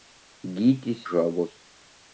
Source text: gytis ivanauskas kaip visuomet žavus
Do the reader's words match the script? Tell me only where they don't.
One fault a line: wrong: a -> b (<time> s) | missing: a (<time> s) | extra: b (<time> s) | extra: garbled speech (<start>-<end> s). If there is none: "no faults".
missing: ivanauskas kaip visuomet (1.0 s)